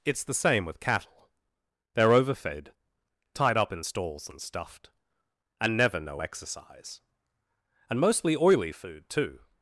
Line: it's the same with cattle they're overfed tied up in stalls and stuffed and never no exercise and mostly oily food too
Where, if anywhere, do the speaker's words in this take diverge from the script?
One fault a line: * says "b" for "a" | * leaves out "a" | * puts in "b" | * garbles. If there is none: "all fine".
all fine